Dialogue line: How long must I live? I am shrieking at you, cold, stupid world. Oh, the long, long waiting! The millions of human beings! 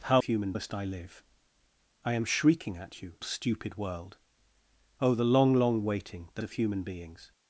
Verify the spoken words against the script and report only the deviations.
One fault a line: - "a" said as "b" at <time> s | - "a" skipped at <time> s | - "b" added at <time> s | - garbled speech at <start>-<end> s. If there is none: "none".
- "long" said as "human" at 0.2 s
- "cold" skipped at 3.1 s
- "millions" skipped at 6.4 s